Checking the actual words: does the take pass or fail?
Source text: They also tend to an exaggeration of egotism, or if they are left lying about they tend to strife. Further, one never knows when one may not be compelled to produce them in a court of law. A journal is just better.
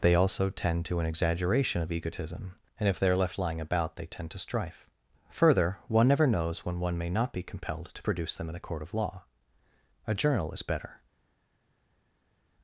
fail